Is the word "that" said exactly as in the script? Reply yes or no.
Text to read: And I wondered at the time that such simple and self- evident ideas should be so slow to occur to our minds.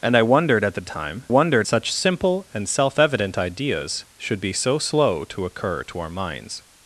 no